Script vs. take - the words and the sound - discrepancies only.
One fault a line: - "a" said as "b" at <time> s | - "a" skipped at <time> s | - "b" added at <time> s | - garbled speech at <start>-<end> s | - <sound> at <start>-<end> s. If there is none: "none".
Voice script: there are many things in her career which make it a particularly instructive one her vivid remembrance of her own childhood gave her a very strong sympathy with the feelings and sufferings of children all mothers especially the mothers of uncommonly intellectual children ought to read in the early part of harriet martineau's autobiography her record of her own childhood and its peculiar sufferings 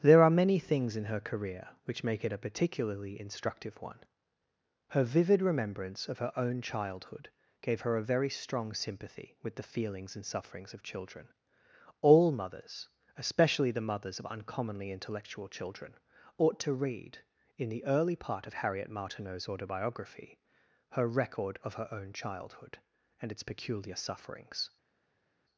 none